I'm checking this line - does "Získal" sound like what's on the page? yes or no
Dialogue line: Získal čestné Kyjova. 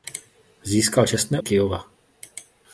yes